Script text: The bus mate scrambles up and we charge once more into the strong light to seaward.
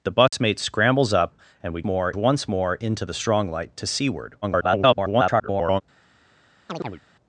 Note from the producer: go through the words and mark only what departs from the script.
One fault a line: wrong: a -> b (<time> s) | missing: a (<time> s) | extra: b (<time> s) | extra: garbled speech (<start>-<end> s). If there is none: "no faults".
wrong: charge -> more (1.8 s)
extra: garbled speech (4.4-5.8 s)